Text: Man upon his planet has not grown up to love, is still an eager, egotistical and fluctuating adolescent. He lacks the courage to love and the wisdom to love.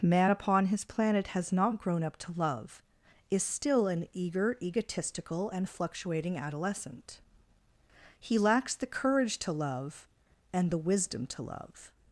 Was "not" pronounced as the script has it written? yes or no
yes